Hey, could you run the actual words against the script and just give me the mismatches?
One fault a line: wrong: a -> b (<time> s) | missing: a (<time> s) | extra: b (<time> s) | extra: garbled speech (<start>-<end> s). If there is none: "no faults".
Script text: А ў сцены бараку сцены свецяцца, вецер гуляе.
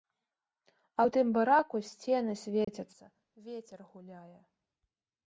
wrong: сцены -> тым (1.1 s)